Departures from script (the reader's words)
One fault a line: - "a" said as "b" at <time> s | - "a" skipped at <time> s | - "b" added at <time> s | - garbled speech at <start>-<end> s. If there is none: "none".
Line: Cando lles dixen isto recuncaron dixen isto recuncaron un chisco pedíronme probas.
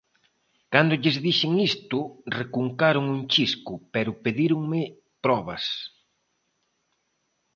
- "dixen isto recuncaron" skipped at 3.0 s
- "pero" added at 3.9 s